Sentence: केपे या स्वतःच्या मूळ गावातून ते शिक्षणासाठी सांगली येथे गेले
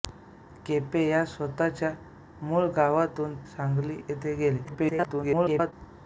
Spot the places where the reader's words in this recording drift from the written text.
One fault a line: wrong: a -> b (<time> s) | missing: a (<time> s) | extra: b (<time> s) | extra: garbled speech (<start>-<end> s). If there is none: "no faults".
missing: ते शिक्षणासाठी (3.4 s)
extra: garbled speech (4.6-5.7 s)